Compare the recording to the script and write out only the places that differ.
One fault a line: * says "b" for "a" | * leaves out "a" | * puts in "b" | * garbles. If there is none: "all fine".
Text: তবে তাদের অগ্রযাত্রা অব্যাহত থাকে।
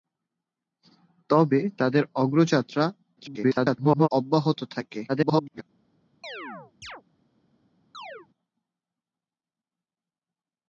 * garbles
* garbles